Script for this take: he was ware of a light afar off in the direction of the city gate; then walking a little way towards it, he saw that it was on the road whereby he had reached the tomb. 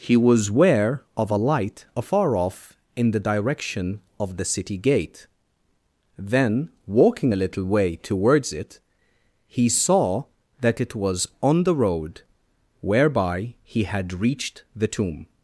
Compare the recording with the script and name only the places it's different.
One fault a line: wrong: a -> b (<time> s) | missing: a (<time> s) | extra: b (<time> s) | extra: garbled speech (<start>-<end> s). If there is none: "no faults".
no faults